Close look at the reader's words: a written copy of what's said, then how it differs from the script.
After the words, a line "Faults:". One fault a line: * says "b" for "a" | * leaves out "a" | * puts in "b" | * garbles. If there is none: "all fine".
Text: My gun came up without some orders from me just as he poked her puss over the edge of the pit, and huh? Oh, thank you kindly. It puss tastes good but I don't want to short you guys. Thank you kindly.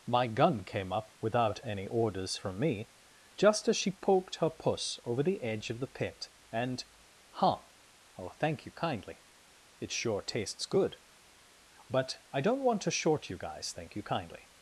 My gun came up without any orders from me just as she poked her puss over the edge of the pit, and huh? Oh, thank you kindly. It sure tastes good but I don't want to short you guys. Thank you kindly.
Faults:
* says "any" for "some"
* says "she" for "he"
* says "sure" for "puss"